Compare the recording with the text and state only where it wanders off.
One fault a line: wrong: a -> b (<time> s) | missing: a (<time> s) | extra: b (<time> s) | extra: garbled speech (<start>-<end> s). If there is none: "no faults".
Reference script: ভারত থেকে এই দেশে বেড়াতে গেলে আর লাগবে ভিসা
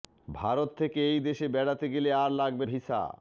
no faults